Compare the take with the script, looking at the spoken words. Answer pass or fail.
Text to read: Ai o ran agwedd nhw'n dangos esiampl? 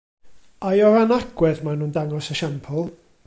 fail